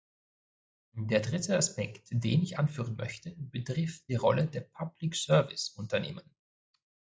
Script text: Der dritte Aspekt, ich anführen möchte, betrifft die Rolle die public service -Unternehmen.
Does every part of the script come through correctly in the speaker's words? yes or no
no